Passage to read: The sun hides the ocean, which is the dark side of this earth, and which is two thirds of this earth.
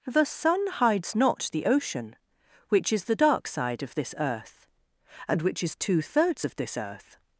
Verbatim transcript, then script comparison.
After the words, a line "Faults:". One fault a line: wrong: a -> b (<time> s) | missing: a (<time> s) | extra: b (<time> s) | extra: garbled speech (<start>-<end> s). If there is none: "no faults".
The sun hides not the ocean, which is the dark side of this earth, and which is two thirds of this earth.
Faults:
extra: not (1.1 s)